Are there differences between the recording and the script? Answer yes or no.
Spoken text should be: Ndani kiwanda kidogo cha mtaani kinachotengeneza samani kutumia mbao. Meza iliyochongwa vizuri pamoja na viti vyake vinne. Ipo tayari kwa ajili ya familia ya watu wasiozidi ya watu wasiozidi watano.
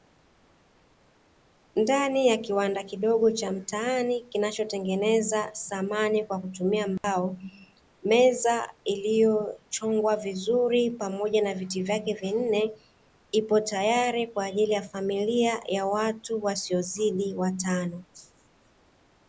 yes